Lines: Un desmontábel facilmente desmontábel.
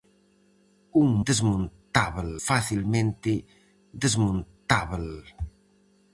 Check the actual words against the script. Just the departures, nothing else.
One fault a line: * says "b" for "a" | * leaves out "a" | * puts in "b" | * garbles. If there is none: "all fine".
all fine